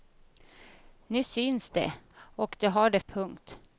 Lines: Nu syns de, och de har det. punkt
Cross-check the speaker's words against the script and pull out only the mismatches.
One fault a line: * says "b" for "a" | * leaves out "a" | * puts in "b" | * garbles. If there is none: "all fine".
all fine